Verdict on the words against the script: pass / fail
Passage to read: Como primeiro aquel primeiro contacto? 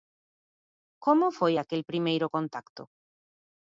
fail